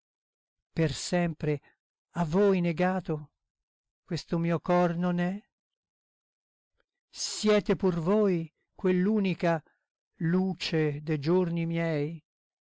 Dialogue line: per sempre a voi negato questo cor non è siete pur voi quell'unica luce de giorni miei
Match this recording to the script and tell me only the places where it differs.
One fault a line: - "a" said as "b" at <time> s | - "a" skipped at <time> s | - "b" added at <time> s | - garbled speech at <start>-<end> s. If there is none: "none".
- "mio" added at 4.4 s